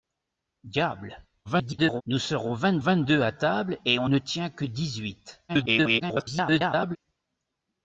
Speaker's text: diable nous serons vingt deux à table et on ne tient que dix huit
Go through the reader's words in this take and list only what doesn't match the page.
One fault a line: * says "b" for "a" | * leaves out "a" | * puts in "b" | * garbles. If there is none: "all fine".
* garbles
* puts in "vingt"
* garbles